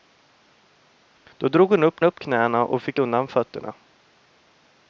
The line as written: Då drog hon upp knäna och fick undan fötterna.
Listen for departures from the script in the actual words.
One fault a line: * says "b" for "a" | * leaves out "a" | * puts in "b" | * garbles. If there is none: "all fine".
* puts in "upp"